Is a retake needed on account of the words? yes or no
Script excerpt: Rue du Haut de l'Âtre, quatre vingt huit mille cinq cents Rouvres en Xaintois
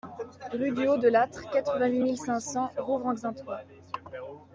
no